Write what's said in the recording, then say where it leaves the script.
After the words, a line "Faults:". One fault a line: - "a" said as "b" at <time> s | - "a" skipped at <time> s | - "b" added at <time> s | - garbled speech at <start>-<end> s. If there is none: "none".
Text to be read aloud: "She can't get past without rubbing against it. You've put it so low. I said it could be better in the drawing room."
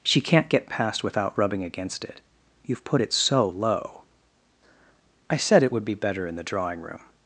"She can't get past without rubbing against it. You've put it so low. I said it would be better in the drawing room."
Faults:
- "could" said as "would" at 5.7 s